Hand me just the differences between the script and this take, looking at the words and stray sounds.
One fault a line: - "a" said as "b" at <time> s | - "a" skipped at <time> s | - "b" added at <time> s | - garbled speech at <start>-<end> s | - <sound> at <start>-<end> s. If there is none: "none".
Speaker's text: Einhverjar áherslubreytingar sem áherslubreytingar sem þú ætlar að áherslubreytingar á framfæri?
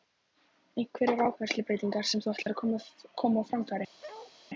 - "áherslubreytingar sem" skipped at 2.2 s
- dropout at 2.4-2.5 s
- "áherslubreytingar" said as "koma" at 3.2 s
- bark at 4.0-4.3 s